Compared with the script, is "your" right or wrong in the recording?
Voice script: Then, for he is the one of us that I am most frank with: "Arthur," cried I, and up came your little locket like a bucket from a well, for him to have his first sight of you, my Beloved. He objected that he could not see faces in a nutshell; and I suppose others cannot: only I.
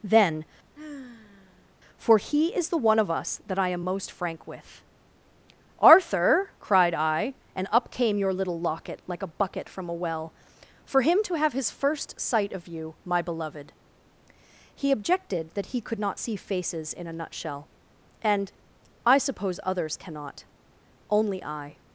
right